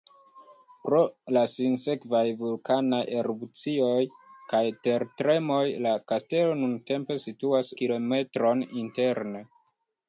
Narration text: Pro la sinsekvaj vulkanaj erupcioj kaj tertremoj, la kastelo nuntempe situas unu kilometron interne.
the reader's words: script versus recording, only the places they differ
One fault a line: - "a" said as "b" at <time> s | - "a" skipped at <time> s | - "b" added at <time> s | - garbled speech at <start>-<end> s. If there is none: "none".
- "unu" skipped at 7.7 s